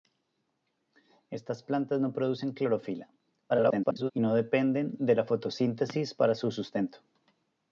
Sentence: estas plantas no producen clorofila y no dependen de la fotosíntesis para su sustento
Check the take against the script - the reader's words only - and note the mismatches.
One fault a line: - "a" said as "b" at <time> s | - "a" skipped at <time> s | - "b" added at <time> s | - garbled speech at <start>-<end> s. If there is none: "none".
- garbled speech at 3.5-4.1 s